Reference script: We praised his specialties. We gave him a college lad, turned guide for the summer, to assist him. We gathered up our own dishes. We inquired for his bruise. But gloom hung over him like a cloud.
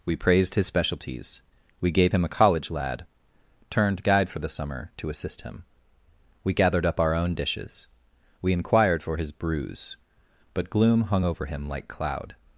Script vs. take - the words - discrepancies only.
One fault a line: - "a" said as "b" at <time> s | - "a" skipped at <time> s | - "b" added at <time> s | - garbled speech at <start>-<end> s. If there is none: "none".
- "a" skipped at 11.9 s